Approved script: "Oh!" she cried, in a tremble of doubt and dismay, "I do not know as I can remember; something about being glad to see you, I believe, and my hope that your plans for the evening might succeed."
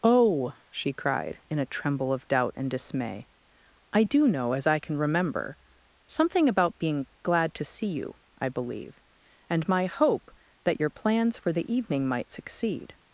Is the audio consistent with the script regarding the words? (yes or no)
no